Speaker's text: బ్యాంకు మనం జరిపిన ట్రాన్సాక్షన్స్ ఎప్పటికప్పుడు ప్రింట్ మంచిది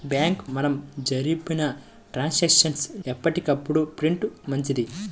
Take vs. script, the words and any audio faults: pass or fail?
pass